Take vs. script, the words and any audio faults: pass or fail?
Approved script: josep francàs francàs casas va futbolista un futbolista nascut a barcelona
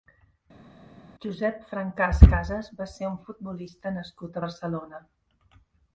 fail